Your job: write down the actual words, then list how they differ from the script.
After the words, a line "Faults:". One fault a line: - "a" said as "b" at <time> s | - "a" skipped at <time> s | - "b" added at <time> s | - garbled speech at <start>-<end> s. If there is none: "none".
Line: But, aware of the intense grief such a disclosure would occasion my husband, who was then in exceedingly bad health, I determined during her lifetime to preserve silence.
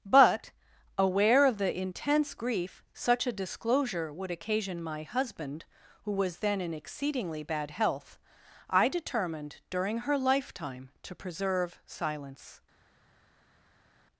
But, aware of the intense grief such a disclosure would occasion my husband, who was then in exceedingly bad health, I determined during her lifetime to preserve silence.
Faults:
none